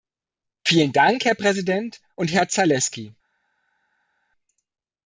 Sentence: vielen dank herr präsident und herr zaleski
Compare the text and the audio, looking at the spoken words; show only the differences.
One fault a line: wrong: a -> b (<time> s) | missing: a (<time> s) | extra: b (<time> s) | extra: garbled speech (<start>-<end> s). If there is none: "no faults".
no faults